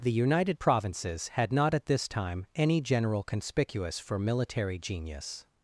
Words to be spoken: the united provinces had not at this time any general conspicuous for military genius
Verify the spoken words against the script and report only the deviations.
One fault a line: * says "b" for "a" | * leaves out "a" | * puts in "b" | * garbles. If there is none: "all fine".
all fine